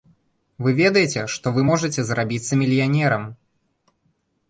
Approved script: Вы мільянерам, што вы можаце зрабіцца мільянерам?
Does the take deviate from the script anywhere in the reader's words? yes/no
yes